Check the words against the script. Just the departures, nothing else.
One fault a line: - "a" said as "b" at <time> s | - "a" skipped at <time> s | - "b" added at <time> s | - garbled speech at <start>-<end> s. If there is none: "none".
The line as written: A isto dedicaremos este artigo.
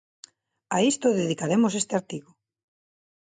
none